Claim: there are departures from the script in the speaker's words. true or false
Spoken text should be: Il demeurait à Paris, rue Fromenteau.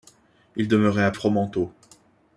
true